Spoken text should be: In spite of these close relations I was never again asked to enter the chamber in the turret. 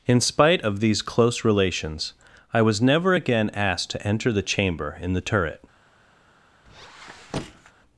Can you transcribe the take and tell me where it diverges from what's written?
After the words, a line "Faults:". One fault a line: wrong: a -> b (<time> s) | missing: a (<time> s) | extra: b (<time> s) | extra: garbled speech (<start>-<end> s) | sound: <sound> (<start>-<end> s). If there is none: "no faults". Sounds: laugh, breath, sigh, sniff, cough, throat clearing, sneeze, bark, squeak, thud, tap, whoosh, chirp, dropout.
In spite of these close relations I was never again asked to enter the chamber in the turret.
Faults:
sound: squeak (6.7-7.7 s)